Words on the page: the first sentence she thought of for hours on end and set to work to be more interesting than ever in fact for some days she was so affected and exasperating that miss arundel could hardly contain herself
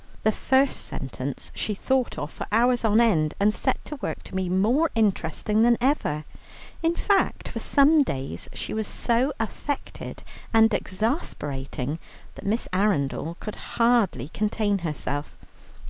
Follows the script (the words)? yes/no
yes